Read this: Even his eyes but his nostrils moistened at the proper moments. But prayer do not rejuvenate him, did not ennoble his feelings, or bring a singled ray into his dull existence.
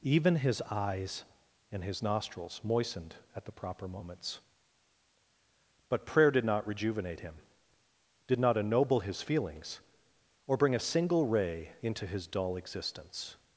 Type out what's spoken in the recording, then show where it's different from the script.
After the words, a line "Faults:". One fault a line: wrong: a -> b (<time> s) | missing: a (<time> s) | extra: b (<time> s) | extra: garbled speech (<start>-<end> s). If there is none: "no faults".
Even his eyes and his nostrils moistened at the proper moments. But prayer did not rejuvenate him, did not ennoble his feelings, or bring a single ray into his dull existence.
Faults:
wrong: but -> and (1.7 s)
wrong: do -> did (6.3 s)
wrong: singled -> single (10.8 s)